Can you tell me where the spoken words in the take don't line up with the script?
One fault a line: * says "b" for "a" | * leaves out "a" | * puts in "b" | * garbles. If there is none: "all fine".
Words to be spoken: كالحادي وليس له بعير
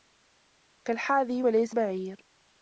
* leaves out "له"